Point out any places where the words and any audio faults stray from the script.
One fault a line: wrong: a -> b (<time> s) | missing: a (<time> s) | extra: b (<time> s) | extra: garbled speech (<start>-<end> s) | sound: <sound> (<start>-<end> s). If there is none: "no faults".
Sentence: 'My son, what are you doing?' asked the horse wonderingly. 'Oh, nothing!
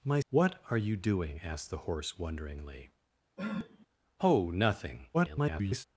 missing: son (0.2 s)
sound: sniff (3.4-3.9 s)
extra: garbled speech (5.1-5.8 s)